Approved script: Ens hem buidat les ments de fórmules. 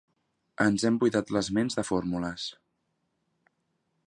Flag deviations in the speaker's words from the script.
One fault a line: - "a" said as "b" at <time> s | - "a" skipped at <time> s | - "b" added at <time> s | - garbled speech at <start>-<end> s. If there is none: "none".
none